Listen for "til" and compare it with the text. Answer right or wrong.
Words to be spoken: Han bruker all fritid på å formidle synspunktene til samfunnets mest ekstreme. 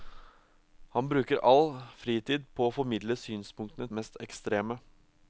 wrong